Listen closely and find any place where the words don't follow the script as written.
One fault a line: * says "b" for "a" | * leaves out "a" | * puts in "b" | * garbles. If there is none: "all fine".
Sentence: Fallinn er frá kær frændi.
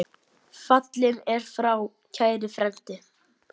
all fine